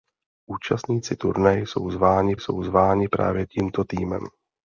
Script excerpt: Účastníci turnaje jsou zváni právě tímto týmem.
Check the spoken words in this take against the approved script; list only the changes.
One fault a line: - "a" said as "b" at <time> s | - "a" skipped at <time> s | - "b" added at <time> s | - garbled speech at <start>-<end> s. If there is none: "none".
- "jsou zváni" added at 2.3 s